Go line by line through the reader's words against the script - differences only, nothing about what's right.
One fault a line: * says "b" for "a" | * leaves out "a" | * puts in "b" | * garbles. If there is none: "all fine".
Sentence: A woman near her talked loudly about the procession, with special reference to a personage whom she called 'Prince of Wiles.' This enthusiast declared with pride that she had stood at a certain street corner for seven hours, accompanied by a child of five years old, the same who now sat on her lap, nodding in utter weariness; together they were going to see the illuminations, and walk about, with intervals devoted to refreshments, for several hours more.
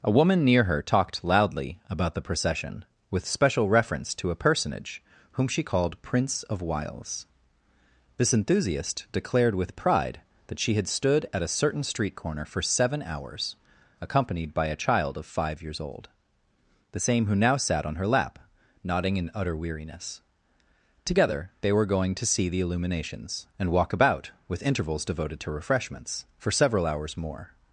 all fine